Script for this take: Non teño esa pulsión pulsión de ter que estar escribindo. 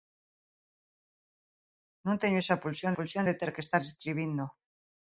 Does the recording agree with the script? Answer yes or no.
yes